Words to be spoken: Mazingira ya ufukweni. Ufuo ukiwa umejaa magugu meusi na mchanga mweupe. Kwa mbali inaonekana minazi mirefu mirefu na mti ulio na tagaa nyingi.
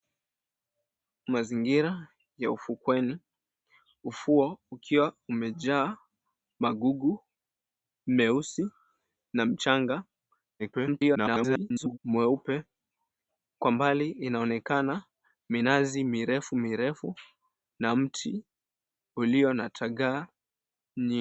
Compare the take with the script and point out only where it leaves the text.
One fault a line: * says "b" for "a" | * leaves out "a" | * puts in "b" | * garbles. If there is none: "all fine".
* garbles